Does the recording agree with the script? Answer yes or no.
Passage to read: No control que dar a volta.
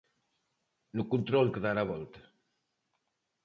yes